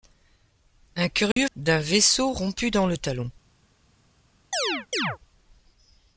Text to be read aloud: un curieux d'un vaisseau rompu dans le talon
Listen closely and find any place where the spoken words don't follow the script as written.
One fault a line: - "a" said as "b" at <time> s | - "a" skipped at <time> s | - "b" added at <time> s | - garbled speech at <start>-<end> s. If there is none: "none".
none